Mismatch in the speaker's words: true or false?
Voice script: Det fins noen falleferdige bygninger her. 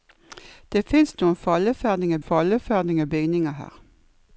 true